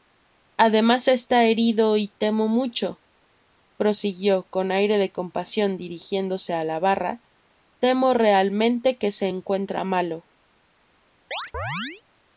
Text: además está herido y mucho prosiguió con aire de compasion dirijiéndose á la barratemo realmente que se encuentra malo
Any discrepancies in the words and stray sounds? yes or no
yes